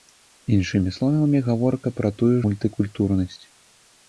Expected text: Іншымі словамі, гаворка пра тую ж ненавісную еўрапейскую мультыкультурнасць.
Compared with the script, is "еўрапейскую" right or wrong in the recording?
wrong